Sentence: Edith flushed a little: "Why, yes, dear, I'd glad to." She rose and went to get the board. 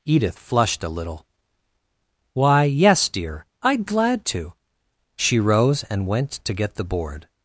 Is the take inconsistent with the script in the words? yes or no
no